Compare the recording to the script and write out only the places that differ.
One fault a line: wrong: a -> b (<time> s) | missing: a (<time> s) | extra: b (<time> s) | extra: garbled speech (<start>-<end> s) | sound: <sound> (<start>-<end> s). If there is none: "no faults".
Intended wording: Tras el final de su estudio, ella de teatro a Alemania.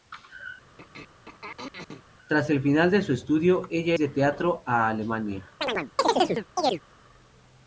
sound: throat clearing (0.8-2.0 s)
sound: chirp (5.6-6.8 s)